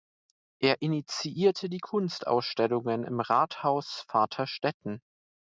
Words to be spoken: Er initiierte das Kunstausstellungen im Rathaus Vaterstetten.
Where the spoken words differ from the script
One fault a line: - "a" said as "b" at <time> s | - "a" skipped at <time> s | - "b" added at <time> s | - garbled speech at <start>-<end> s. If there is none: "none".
- "das" said as "die" at 1.7 s